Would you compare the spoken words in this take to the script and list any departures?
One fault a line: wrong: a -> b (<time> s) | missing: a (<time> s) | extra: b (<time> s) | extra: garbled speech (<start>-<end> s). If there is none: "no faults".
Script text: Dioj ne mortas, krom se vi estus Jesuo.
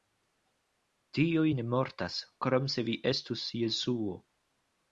no faults